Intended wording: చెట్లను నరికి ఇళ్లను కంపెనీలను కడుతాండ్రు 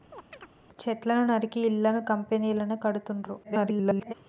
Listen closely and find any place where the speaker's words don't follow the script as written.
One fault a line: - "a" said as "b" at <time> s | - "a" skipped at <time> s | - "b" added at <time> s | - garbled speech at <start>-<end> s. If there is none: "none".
- garbled speech at 3.4-4.1 s